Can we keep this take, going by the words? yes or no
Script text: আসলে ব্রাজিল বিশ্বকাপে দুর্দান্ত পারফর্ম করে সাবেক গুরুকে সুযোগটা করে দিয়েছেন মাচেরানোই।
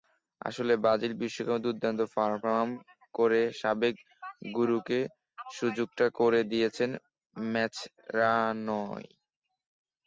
yes